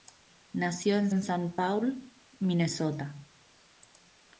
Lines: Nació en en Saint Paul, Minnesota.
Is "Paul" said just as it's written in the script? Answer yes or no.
yes